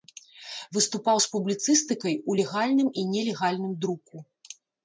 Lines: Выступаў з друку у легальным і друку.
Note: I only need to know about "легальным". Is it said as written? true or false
true